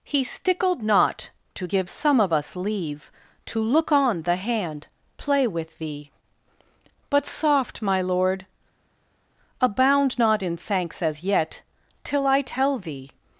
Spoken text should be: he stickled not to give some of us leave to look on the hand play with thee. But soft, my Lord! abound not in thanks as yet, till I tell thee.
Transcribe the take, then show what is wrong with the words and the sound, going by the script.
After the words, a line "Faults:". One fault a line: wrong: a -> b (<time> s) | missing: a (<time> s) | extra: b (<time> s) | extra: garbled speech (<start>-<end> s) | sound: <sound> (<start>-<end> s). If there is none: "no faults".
he stickled not to give some of us leave to look on the hand play with thee. But soft, my Lord! abound not in thanks as yet, till I tell thee.
Faults:
no faults